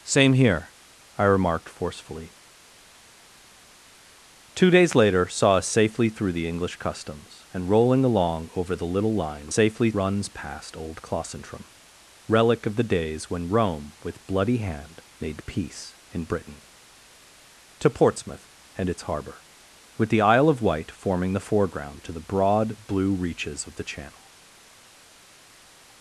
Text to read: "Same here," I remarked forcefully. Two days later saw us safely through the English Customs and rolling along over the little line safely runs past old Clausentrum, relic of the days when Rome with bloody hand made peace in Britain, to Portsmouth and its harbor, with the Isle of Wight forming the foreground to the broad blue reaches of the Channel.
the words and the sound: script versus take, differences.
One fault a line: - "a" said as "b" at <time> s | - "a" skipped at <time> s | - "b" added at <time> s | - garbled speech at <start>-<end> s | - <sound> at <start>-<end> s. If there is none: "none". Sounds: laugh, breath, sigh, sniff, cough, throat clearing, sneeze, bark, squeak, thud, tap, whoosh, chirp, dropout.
none